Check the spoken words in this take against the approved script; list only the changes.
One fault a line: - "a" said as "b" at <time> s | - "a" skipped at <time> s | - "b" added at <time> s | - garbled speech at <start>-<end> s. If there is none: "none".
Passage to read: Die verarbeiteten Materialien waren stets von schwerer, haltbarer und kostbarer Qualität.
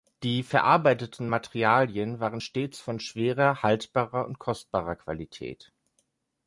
none